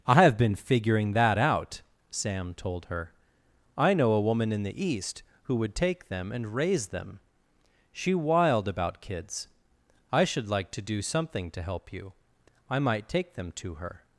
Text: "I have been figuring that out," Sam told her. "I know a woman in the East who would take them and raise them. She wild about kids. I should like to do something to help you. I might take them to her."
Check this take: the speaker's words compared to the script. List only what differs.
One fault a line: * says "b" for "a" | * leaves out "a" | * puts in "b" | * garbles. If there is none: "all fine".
all fine